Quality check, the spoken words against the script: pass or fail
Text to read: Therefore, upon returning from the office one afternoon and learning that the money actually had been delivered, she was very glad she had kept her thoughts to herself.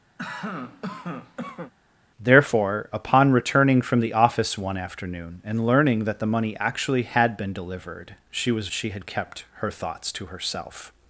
fail